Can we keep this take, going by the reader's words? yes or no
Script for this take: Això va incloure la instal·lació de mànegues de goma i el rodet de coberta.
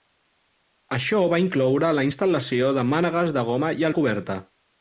no